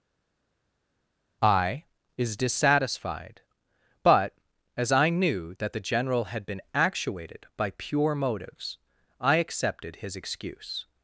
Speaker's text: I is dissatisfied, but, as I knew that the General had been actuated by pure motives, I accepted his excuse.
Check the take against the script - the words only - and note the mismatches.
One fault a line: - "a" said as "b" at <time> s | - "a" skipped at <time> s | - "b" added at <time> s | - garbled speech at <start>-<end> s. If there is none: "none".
none